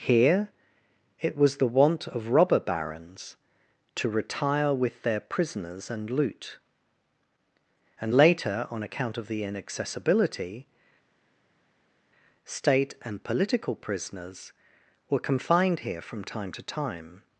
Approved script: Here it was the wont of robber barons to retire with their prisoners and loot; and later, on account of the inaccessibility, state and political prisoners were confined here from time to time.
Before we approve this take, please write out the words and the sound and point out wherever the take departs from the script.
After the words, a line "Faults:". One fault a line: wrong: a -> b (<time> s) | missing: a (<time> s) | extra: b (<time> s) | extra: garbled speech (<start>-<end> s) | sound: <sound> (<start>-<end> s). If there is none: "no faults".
Here it was the wont of robber barons to retire with their prisoners and loot; and later, on account of the inaccessibility, state and political prisoners were confined here from time to time.
Faults:
no faults